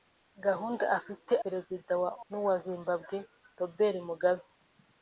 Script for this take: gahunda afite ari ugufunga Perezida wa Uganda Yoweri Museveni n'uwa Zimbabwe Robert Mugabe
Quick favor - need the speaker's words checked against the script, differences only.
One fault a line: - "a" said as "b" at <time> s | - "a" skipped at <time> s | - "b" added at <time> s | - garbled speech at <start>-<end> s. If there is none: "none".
- "ari ugufunga" skipped at 1.3 s
- "Uganda Yoweri Museveni" skipped at 2.1 s